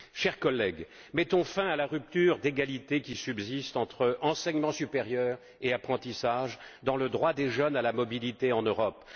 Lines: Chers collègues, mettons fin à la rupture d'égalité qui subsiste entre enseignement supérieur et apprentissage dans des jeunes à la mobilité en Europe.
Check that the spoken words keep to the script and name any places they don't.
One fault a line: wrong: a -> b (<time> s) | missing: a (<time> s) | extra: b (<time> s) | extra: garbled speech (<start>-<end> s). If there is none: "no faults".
extra: le droit (7.0 s)